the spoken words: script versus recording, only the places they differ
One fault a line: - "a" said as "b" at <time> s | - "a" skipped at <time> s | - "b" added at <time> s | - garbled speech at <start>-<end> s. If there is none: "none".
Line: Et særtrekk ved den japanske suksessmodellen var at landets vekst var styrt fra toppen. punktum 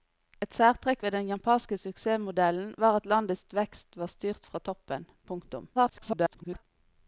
- garbled speech at 5.7-6.6 s